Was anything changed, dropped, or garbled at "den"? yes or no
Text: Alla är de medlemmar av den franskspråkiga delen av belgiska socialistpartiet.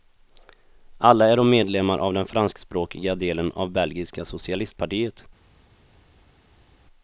no